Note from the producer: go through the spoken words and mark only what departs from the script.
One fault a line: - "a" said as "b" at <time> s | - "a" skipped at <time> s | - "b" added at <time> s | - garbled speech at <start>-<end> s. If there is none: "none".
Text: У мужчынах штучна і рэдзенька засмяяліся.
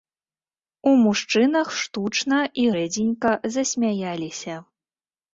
none